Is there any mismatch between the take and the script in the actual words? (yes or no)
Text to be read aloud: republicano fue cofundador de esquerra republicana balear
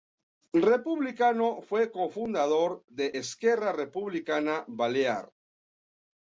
no